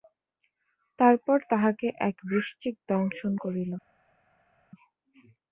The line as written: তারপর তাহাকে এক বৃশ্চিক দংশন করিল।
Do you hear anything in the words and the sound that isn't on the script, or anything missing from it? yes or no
no